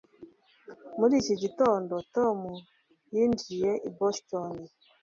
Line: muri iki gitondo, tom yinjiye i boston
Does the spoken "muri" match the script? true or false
true